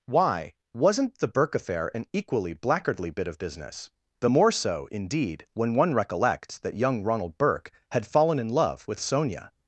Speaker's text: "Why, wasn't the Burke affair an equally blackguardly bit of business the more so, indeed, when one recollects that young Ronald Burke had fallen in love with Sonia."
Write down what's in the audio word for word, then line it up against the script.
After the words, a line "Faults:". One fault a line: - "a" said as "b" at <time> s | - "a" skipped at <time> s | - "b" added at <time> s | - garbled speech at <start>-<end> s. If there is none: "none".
"Why, wasn't the Burke affair an equally blackguardly bit of business the more so, indeed, when one recollects that young Ronald Burke had fallen in love with Sonia."
Faults:
none